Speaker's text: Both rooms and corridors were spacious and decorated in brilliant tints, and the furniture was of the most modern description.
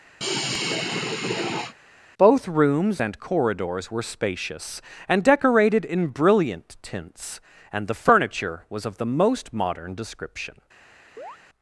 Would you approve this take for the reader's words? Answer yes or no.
yes